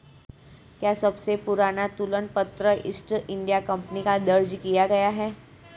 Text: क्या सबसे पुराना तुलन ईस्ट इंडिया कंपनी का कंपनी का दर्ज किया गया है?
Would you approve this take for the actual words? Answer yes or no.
no